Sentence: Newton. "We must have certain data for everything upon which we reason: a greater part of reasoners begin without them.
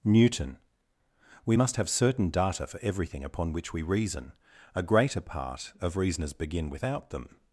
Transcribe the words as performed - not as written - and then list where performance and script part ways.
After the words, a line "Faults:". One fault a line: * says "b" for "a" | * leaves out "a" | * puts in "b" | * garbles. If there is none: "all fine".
Newton. "We must have certain data for everything upon which we reason: a greater part of reasoners begin without them.
Faults:
all fine